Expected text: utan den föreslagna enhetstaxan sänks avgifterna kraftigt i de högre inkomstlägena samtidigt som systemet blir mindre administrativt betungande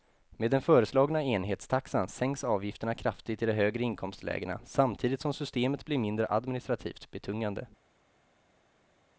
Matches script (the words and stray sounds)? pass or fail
fail